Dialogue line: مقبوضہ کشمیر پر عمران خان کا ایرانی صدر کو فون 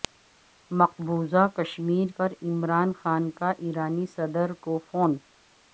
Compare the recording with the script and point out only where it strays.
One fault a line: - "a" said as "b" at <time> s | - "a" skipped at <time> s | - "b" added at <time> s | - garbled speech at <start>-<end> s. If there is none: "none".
none